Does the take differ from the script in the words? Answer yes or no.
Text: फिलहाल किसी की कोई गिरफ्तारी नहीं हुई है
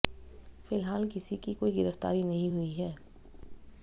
no